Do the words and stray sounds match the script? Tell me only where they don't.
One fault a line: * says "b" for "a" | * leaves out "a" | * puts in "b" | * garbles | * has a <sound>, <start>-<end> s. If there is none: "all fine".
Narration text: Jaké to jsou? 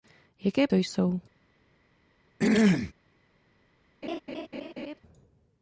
* has a throat clearing, 2.4-2.9 s
* has a laugh, 4.0-5.0 s